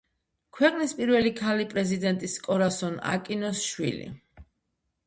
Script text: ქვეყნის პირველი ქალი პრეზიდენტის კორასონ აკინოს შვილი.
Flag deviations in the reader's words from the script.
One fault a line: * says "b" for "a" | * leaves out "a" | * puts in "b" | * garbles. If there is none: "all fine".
all fine